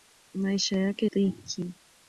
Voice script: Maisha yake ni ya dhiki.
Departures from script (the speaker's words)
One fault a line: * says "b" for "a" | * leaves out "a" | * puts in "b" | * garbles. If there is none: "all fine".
* leaves out "ni ya"